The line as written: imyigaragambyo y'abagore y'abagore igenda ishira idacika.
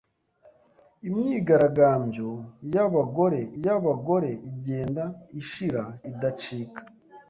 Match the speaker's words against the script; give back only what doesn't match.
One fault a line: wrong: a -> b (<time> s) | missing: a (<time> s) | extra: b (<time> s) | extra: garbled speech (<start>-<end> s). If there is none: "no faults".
no faults